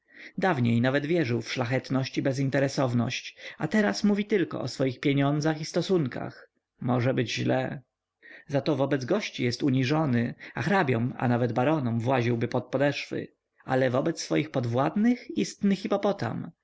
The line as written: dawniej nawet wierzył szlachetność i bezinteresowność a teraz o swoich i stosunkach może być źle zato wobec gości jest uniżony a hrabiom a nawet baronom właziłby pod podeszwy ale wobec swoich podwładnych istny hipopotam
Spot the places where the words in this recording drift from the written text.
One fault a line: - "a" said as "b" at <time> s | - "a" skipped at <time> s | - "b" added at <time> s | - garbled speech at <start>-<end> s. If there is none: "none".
- "w" added at 1.4 s
- "mówi tylko" added at 4.0 s
- "pieniądzach" added at 5.0 s